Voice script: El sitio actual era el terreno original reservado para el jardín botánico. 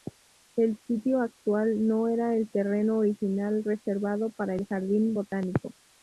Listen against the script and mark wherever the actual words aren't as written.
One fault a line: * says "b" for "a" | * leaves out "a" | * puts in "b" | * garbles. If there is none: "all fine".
* puts in "no"